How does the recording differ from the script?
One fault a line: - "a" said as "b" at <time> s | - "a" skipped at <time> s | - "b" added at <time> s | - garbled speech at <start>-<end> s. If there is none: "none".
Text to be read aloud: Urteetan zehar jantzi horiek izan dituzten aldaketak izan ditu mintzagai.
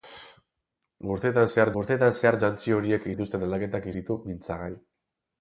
- "urteetan zehar" added at 1.8 s
- "izan" skipped at 3.1 s
- "izan" skipped at 3.9 s